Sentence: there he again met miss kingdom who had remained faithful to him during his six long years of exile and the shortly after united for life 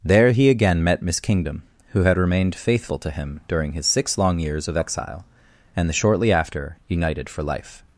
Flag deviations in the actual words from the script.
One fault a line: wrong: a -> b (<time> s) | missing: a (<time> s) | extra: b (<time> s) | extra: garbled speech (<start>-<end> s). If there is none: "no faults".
no faults